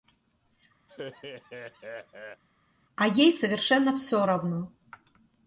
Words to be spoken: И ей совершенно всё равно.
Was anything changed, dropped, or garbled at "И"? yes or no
yes